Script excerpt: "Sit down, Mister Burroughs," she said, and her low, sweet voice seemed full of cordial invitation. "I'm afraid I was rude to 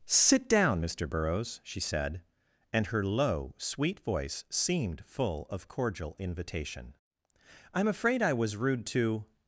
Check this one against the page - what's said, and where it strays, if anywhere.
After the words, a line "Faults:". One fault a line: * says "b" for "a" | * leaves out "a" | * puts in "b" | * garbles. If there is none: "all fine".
"Sit down, Mister Burroughs," she said, and her low, sweet voice seemed full of cordial invitation. "I'm afraid I was rude to
Faults:
all fine